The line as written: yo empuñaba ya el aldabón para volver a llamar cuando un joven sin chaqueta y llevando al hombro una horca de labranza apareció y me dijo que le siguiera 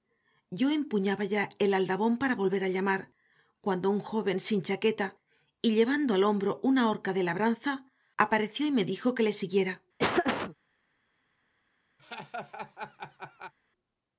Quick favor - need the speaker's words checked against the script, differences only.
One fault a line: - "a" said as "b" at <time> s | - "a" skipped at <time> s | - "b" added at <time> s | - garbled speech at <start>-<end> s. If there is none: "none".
none